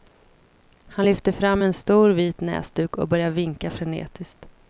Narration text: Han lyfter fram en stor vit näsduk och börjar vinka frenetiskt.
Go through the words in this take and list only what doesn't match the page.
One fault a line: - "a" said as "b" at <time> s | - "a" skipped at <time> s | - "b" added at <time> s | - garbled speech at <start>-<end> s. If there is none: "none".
none